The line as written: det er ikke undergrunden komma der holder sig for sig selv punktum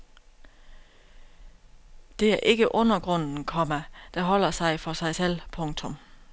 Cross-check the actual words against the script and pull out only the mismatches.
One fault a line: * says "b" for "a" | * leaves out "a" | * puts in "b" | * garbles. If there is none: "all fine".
all fine